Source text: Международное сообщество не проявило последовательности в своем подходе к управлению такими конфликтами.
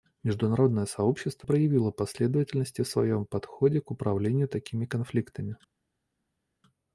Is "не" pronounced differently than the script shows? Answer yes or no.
yes